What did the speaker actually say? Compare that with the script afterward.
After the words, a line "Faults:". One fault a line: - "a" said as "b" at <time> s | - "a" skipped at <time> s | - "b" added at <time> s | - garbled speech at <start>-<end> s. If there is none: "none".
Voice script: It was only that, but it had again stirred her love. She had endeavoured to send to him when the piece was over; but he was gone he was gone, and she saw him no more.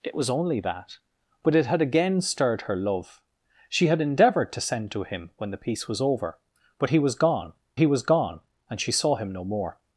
It was only that, but it had again stirred her love. She had endeavoured to send to him when the piece was over; but he was gone he was gone, and she saw him no more.
Faults:
none